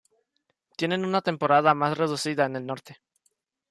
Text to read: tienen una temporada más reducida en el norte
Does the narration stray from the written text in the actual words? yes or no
no